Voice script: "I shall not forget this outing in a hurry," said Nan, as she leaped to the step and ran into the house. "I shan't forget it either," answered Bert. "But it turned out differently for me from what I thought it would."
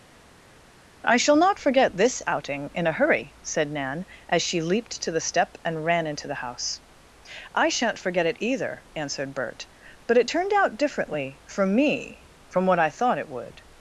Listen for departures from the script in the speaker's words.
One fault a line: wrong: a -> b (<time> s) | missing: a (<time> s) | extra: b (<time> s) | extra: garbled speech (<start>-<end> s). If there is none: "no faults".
no faults